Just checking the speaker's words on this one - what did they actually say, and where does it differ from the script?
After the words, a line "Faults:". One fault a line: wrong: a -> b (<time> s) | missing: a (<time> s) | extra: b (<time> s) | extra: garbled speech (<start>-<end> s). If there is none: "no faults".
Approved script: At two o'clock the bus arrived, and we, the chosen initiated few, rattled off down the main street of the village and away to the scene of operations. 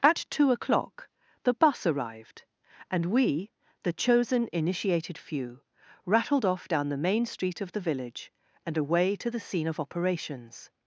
At two o'clock the bus arrived, and we, the chosen initiated few, rattled off down the main street of the village and away to the scene of operations.
Faults:
no faults